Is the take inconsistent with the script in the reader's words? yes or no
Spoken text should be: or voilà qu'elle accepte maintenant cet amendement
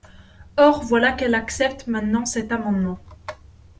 no